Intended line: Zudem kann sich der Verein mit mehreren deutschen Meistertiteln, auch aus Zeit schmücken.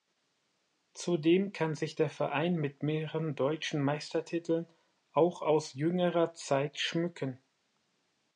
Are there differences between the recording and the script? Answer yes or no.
yes